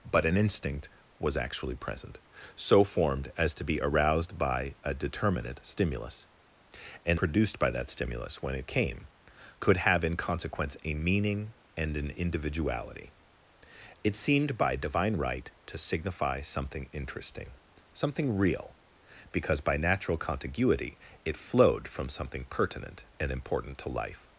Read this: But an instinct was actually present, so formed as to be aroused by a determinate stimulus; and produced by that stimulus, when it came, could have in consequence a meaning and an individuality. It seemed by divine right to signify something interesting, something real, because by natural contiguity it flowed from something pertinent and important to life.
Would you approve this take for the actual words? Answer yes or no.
yes